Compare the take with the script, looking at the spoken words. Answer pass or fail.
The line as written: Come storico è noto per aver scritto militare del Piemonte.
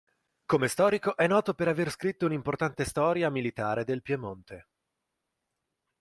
fail